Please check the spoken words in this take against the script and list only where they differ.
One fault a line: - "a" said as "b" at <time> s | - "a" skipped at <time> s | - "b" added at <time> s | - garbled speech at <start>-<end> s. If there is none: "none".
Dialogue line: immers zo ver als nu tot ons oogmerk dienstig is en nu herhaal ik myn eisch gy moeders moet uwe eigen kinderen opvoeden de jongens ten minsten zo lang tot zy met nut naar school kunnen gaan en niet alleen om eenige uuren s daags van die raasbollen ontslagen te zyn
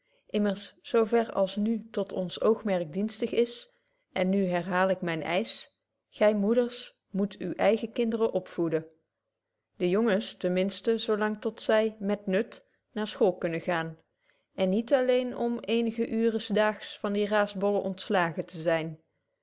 none